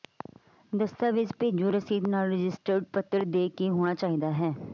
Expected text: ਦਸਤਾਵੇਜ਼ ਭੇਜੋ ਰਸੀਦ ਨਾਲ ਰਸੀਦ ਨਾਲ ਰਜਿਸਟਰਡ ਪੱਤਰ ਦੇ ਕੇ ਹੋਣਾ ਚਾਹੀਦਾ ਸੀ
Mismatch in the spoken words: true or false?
true